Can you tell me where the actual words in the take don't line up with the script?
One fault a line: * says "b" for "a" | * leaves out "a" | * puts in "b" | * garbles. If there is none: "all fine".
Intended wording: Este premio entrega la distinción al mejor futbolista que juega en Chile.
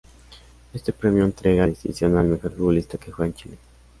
* leaves out "la"